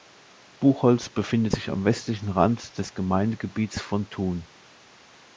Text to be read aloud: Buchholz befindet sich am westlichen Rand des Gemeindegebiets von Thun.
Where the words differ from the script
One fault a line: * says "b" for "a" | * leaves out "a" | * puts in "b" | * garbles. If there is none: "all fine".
all fine